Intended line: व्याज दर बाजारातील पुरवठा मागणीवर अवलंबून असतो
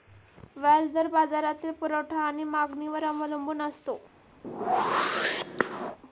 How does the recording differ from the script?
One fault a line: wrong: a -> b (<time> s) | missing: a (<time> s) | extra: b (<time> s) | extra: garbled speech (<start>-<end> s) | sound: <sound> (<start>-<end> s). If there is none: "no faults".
extra: आणि (2.2 s)
sound: whoosh (4.4-6.0 s)